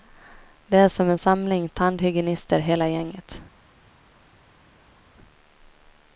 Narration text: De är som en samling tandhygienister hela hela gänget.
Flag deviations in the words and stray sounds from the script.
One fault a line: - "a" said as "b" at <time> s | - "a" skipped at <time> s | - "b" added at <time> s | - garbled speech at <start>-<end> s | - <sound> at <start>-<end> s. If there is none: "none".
- "hela" skipped at 2.9 s